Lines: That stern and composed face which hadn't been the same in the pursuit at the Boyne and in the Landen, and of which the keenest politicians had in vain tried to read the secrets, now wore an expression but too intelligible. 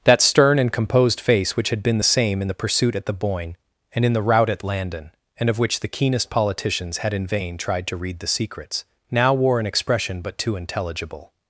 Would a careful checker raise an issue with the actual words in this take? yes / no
yes